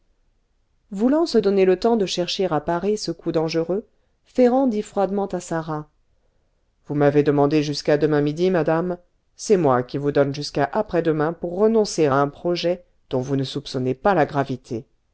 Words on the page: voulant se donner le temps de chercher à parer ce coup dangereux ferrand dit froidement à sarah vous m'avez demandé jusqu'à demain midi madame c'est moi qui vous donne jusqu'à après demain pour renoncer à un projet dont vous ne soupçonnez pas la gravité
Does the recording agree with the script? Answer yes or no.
yes